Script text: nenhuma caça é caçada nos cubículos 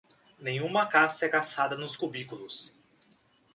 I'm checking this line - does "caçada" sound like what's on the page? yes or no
yes